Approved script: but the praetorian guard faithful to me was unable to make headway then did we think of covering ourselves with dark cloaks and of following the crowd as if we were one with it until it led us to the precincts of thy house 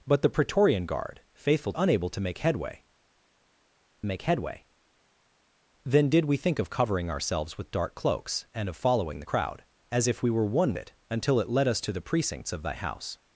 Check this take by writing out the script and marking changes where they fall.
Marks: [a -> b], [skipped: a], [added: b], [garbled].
but the praetorian guard faithful [skipped: to me was] unable to make headway [added: make headway] then did we think of covering ourselves with dark cloaks and of following the crowd as if we were one [skipped: with] it until it led us to the precincts of thy house